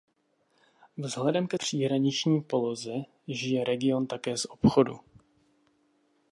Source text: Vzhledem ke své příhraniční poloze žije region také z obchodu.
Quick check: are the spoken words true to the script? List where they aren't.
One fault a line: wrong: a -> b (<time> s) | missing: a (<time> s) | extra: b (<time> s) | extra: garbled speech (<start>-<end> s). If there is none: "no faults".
missing: své (1.6 s)